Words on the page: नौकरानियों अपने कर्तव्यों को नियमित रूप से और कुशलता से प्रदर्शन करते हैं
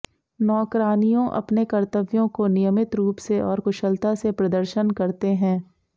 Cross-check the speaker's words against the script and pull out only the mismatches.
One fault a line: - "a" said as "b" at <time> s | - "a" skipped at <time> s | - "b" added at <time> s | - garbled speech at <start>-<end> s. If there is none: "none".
none